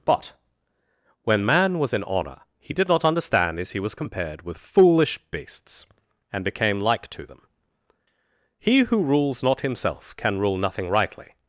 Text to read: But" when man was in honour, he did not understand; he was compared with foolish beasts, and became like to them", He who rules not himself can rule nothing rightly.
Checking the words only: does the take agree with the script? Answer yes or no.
no